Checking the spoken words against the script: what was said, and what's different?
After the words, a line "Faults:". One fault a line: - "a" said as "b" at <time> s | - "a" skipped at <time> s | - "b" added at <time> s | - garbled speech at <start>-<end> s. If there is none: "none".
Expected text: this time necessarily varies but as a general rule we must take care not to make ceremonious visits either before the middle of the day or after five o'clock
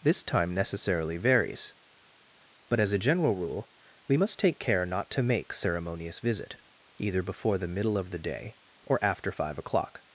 this time necessarily varies but as a general rule we must take care not to make ceremonious visit either before the middle of the day or after five o'clock
Faults:
- "visits" said as "visit" at 6.2 s